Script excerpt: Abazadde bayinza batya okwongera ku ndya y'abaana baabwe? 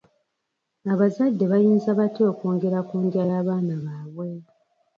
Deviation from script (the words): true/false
false